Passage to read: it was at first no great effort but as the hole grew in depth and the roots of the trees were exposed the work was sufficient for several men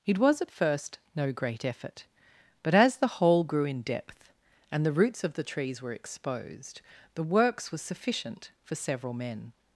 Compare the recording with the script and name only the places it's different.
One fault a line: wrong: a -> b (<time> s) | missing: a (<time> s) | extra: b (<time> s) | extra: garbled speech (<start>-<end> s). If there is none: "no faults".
wrong: work -> works (7.2 s)